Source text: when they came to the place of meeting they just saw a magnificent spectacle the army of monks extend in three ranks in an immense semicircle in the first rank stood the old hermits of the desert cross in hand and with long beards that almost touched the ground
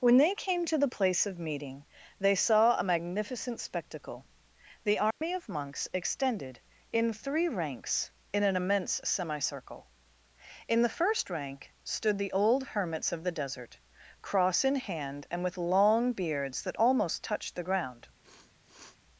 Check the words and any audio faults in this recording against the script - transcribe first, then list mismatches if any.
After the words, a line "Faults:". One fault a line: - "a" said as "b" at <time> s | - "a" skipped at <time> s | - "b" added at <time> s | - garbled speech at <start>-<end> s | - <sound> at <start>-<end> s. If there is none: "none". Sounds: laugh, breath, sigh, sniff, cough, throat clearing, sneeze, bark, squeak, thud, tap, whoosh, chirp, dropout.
when they came to the place of meeting they saw a magnificent spectacle the army of monks extended in three ranks in an immense semicircle in the first rank stood the old hermits of the desert cross in hand and with long beards that almost touched the ground
Faults:
- "just" skipped at 2.3 s
- dropout at 5.1-5.2 s
- "extend" said as "extended" at 5.9 s
- sniff at 18.2-19.0 s